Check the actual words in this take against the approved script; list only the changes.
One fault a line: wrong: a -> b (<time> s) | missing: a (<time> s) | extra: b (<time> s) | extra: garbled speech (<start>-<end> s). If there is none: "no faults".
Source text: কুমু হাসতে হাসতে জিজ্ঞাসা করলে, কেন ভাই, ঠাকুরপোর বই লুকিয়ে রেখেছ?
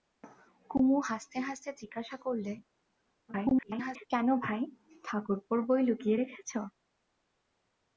extra: garbled speech (3.3-4.1 s)